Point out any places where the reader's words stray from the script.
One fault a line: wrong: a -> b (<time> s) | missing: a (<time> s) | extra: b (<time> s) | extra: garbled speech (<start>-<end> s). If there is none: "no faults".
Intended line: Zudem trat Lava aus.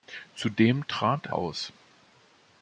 missing: Lava (1.3 s)